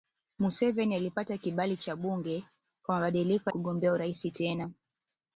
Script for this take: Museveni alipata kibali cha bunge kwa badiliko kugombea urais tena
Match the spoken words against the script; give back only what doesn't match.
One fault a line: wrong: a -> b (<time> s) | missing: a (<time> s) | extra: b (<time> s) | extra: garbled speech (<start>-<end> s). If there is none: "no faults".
no faults